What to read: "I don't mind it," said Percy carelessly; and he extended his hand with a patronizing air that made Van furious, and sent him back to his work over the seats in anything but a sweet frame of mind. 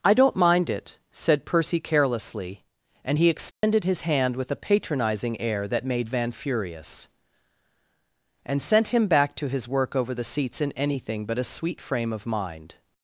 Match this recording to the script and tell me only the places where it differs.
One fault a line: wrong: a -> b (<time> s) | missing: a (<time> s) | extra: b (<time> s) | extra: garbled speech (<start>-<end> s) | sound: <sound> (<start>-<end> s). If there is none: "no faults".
sound: dropout (3.5-3.6 s)